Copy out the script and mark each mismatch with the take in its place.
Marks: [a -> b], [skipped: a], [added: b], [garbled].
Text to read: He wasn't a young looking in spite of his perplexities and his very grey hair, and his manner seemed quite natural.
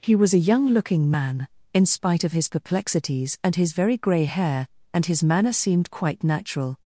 He [wasn't -> was] a young looking [added: man] in spite of his perplexities and his very grey hair, and his manner seemed quite natural.